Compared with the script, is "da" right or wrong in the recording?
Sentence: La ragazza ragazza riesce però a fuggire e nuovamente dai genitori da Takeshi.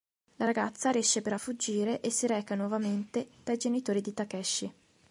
wrong